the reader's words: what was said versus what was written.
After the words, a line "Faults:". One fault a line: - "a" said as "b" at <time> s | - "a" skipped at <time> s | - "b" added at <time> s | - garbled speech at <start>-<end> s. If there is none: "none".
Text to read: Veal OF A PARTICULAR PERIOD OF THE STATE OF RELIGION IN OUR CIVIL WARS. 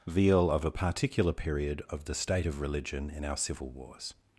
Veal OF A PARTICULAR PERIOD OF THE STATE OF RELIGION IN OUR CIVIL WARS.
Faults:
none